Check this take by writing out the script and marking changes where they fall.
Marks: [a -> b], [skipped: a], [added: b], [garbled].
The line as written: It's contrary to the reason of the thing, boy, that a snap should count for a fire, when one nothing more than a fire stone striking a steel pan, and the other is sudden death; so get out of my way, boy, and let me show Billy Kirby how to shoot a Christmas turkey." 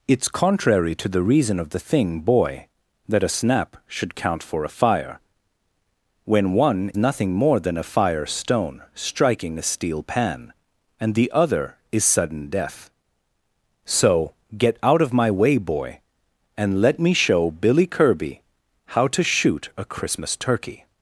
It's contrary to the reason of the thing, boy, that a snap should count for a fire, when one nothing more than a fire stone striking a steel pan, and the other is sudden death; so get out of my way, boy, and let me show Billy Kirby how to shoot a Christmas turkey."